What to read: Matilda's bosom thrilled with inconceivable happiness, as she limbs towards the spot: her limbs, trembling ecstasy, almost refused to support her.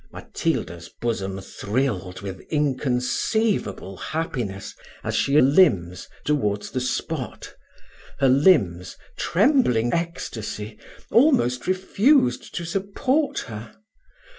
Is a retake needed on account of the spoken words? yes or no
no